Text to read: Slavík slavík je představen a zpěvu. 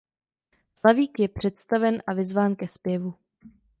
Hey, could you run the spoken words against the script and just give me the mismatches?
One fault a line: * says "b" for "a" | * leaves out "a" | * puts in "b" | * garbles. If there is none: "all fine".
* leaves out "slavík"
* puts in "vyzván ke"